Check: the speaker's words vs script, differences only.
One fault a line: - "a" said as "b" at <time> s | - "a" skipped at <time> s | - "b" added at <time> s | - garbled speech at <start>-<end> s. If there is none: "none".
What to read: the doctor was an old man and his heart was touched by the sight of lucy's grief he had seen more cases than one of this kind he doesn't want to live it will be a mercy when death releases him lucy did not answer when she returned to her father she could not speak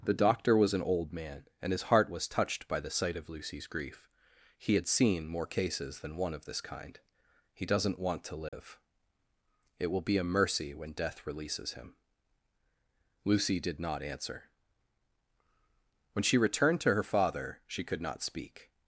none